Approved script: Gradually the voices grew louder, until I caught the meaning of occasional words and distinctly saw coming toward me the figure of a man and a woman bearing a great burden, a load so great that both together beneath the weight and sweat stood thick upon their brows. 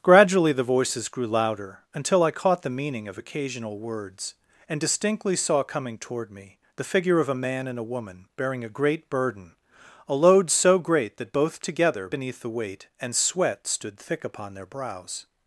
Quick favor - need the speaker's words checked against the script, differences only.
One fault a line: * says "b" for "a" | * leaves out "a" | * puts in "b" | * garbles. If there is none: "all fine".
all fine